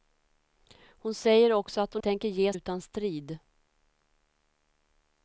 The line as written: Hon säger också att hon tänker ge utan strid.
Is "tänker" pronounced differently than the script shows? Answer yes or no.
no